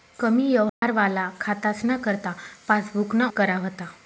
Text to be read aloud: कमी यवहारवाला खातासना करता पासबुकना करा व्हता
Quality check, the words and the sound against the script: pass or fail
fail